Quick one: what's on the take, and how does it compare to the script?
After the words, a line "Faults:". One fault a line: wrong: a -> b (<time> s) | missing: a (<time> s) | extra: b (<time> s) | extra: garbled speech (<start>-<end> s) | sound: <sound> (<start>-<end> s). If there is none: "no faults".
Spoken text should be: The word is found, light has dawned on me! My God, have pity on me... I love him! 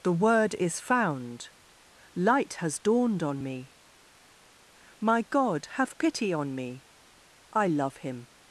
The word is found, light has dawned on me! My God, have pity on me... I love him!
Faults:
no faults